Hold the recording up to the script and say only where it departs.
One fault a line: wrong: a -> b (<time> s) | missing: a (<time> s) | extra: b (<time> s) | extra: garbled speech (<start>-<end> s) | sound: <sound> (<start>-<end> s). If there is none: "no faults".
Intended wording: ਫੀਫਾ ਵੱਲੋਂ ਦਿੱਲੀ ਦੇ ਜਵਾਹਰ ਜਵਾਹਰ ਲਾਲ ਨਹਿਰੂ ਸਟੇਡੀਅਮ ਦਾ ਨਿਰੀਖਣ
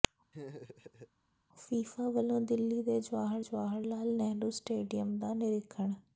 sound: laugh (0.3-1.1 s)